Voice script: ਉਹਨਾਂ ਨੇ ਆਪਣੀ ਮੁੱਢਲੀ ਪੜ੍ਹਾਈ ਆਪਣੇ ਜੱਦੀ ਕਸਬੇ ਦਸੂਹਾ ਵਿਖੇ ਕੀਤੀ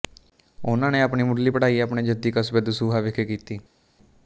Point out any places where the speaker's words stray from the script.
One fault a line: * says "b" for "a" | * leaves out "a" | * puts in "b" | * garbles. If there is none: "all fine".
all fine